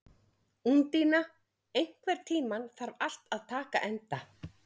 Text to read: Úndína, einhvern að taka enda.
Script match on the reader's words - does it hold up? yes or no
no